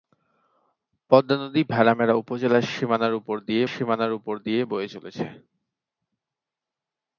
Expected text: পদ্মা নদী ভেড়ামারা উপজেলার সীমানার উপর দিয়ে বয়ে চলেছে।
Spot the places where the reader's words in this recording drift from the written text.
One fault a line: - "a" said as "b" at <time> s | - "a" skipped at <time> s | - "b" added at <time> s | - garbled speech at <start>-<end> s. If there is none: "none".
- "সীমানার উপর দিয়ে" added at 3.7 s